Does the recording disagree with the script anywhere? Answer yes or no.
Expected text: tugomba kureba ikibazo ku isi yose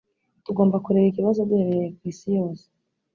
yes